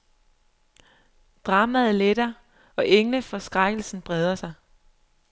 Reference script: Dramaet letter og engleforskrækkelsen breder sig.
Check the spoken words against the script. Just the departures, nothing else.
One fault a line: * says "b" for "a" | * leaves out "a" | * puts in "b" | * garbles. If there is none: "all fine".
all fine